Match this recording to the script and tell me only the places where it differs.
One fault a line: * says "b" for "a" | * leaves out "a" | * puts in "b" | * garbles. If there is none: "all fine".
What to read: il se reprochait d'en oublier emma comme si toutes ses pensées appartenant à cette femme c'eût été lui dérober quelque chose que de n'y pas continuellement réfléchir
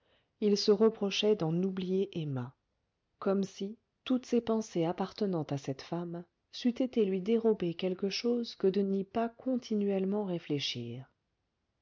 all fine